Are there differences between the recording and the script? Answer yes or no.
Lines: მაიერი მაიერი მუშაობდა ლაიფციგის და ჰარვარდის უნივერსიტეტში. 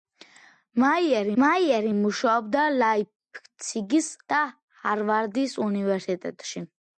no